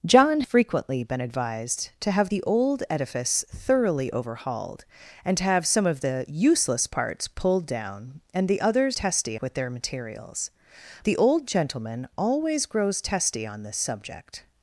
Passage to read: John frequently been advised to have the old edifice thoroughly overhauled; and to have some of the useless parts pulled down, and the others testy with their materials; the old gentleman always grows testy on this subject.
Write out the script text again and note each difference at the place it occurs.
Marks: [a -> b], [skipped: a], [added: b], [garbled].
John frequently been advised to have the old edifice thoroughly overhauled; and to have some of the useless parts pulled down, and the others testy with their materials; the old gentleman always grows testy on this subject.